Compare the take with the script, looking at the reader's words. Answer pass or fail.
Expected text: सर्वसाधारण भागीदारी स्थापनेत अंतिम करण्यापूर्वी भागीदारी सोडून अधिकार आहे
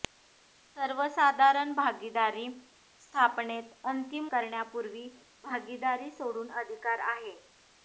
pass